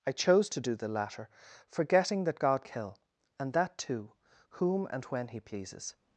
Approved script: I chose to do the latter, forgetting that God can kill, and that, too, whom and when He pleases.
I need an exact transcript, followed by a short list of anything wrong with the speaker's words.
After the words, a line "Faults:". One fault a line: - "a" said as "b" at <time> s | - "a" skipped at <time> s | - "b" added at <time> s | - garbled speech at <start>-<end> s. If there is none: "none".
I chose to do the latter, forgetting that God kill, and that, too, whom and when He pleases.
Faults:
- "can" skipped at 2.7 s